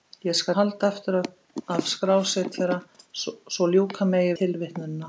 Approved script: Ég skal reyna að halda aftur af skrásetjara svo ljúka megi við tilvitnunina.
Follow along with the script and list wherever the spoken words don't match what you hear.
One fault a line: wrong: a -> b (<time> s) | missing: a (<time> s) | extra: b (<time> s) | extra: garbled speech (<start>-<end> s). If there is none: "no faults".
missing: reyna (0.6 s)
missing: við (4.4 s)